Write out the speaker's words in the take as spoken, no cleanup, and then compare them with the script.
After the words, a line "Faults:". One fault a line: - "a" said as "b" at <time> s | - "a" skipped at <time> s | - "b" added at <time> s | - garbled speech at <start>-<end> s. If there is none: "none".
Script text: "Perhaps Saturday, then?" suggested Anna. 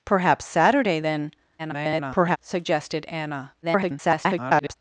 "Perhaps Saturday, then?" [garbled] suggested Anna. [garbled]
Faults:
- garbled speech at 1.6-2.4 s
- garbled speech at 3.6-4.7 s